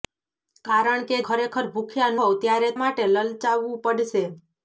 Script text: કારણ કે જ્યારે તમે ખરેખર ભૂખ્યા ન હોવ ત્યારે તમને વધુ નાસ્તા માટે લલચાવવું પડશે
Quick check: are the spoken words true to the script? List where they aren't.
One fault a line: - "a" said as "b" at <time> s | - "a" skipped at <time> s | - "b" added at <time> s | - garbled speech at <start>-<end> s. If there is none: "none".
- "જ્યારે તમે" skipped at 1.2 s
- "ન" skipped at 2.1 s
- "તમને વધુ નાસ્તા" skipped at 2.7 s